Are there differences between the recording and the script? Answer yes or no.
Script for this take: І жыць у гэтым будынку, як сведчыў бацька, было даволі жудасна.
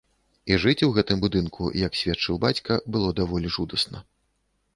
no